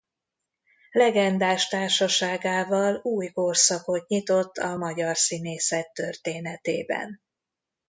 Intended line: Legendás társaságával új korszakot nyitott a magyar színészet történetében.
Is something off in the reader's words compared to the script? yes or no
no